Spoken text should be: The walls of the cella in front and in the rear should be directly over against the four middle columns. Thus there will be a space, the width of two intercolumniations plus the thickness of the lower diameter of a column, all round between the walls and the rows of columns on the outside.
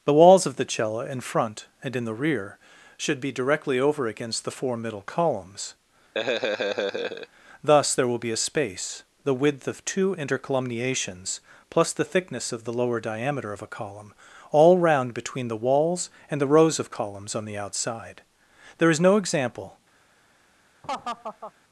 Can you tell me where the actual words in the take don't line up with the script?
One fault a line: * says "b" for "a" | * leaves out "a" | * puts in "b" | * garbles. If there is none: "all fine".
* puts in "There is no example"